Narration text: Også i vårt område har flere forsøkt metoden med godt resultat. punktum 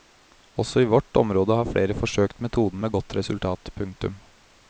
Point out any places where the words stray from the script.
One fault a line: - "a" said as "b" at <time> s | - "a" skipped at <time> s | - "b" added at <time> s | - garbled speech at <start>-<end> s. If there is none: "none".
none